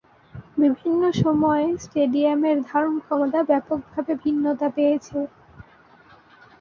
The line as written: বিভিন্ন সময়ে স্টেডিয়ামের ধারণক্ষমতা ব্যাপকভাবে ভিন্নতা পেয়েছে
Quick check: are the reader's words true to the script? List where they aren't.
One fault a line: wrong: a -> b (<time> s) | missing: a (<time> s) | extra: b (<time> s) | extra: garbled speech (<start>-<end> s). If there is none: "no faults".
no faults